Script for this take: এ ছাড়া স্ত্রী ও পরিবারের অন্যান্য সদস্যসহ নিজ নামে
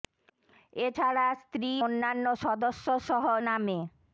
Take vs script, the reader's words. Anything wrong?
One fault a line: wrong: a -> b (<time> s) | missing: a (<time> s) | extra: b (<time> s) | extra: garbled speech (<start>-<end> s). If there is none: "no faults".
missing: ও পরিবারের (1.7 s)
missing: নিজ (3.2 s)